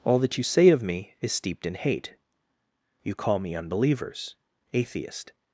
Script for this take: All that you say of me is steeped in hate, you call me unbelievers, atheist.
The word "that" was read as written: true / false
true